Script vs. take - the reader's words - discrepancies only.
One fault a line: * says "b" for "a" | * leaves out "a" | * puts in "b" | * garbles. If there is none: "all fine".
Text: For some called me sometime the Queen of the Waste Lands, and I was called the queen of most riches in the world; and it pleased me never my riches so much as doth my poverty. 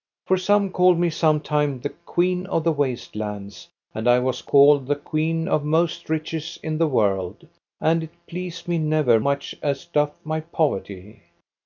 * leaves out "my riches so"